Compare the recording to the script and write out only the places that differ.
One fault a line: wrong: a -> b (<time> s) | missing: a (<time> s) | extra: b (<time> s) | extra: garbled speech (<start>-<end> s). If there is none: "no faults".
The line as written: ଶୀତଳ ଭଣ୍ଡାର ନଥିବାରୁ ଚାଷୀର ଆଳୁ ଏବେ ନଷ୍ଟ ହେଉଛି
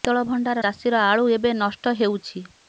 missing: ନଥିବାରୁ (0.6 s)